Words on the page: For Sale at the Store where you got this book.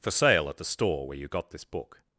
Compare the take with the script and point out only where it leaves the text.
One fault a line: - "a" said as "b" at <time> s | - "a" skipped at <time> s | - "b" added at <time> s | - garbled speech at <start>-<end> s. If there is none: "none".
none